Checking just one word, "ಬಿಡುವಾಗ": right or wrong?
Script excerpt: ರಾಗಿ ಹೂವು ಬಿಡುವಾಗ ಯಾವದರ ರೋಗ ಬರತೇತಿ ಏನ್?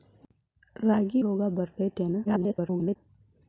wrong